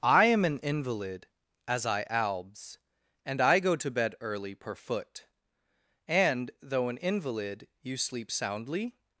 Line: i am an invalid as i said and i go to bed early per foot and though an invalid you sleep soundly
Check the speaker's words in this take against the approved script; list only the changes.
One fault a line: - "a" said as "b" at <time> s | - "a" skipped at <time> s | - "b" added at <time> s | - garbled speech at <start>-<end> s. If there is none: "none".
- "said" said as "albs" at 2.1 s